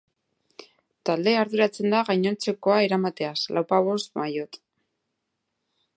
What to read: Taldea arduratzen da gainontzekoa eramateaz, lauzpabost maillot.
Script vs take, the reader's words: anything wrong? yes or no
no